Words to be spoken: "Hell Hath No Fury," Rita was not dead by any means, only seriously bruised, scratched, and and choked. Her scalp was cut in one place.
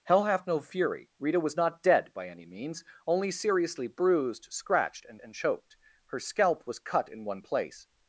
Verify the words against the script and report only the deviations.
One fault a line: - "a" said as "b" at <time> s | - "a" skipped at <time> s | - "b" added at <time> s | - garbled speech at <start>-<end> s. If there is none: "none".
none